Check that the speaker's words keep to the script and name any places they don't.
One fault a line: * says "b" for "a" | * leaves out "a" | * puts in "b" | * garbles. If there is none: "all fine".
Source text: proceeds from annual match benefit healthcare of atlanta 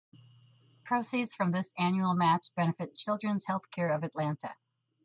* puts in "this"
* puts in "children's"